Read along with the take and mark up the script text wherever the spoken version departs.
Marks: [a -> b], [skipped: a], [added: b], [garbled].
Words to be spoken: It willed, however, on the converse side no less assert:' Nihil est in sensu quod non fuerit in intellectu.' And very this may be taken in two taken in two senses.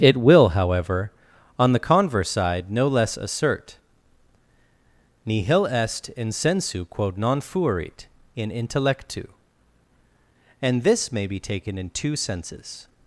It [willed, -> will] however, on the converse side no less assert:' Nihil est in sensu quod non fuerit in intellectu.' And [skipped: very] this may be taken in two [skipped: taken in two] senses.